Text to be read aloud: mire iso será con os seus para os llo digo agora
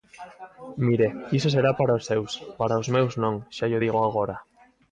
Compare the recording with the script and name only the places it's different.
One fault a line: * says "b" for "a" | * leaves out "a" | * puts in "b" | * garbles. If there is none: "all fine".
* says "para" for "con"
* puts in "meus non xa"